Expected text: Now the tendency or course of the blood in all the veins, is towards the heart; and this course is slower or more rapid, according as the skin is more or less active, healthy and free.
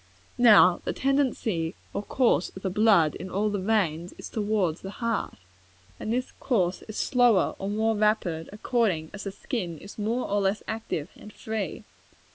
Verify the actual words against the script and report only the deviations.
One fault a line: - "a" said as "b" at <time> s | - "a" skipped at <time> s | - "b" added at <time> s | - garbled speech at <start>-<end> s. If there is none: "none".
- "healthy" skipped at 11.1 s